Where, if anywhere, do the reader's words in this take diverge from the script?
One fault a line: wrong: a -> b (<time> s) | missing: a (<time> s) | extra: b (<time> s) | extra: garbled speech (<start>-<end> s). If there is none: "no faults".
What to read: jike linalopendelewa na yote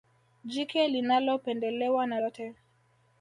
no faults